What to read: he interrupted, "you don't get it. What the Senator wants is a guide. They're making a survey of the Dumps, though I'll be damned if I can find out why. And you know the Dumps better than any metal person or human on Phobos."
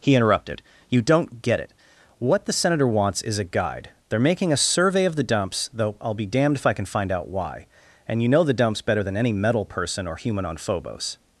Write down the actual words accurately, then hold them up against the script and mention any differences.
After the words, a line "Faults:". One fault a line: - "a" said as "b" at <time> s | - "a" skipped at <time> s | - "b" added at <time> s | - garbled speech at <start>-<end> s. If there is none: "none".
he interrupted, "you don't get it. What the Senator wants is a guide. They're making a survey of the Dumps, though I'll be damned if I can find out why. And you know the Dumps better than any metal person or human on Phobos."
Faults:
none